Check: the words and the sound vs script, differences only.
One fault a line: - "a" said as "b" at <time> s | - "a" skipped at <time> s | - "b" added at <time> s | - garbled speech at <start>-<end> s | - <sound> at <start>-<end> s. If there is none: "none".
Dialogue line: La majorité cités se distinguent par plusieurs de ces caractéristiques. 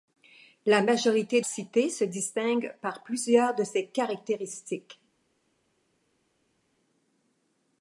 none